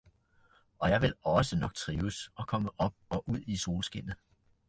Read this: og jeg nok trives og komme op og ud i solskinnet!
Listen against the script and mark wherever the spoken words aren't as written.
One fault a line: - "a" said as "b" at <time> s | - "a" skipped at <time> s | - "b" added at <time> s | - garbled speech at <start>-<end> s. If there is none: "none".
- "vil også" added at 1.0 s